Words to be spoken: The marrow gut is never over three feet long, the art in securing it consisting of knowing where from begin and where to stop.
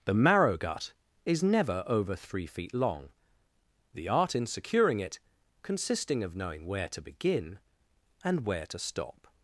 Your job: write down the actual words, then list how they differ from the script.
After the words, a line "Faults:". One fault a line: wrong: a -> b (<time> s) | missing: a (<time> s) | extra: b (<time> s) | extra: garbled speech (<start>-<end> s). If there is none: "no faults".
The marrow gut is never over three feet long, the art in securing it consisting of knowing where to begin and where to stop.
Faults:
wrong: from -> to (6.9 s)